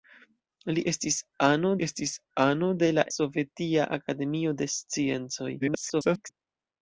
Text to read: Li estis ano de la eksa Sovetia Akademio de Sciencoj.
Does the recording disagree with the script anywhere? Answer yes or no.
yes